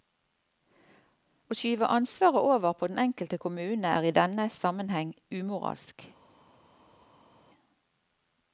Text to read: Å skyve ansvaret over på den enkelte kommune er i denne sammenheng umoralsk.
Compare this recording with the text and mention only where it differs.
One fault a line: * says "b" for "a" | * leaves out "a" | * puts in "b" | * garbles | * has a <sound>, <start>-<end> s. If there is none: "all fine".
all fine